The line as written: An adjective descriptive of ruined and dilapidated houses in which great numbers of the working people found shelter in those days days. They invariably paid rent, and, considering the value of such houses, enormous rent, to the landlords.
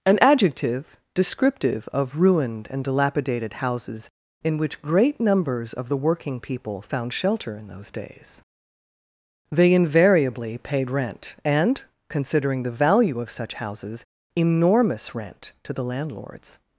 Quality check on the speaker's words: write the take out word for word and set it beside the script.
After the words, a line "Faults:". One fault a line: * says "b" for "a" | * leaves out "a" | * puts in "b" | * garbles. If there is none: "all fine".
An adjective descriptive of ruined and dilapidated houses in which great numbers of the working people found shelter in those days. They invariably paid rent, and, considering the value of such houses, enormous rent, to the landlords.
Faults:
* leaves out "days"